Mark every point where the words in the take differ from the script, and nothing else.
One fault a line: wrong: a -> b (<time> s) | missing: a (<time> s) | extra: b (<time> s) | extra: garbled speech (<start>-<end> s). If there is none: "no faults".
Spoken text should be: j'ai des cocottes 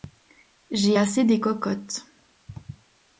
extra: assez (0.9 s)